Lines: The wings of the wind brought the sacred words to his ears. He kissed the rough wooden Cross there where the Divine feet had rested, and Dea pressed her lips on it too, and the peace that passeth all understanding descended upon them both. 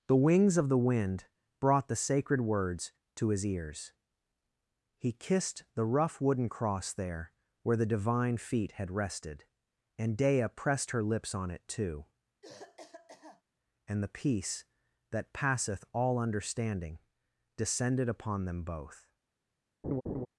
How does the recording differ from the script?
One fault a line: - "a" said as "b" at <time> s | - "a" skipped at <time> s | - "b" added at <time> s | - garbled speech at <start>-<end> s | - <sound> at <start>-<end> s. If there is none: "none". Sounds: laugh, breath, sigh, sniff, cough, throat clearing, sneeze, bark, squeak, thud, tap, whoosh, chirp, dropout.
- cough at 12.4-13.4 s
- laugh at 19.8-20.3 s